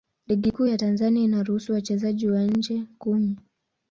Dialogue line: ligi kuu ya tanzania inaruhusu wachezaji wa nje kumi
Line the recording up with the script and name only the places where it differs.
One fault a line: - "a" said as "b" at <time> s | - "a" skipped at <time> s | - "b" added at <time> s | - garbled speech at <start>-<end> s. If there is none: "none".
none